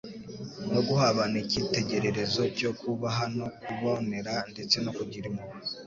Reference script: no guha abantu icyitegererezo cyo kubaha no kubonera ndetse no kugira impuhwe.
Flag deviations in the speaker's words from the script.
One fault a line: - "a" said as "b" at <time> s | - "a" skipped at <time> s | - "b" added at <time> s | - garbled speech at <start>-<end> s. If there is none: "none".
none